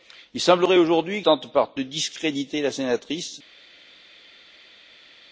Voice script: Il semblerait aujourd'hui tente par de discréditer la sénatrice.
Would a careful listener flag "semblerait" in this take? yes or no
no